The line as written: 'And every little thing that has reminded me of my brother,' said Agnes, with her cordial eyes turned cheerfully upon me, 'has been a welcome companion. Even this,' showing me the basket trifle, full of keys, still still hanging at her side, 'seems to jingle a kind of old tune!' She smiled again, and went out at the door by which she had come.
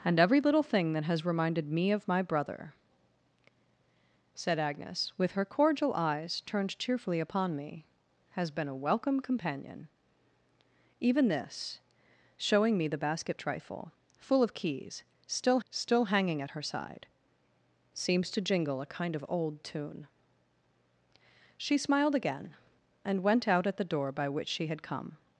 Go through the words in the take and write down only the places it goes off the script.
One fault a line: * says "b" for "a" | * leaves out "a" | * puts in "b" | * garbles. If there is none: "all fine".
all fine